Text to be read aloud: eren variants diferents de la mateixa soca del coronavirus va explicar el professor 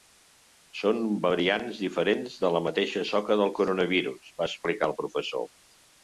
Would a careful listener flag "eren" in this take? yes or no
yes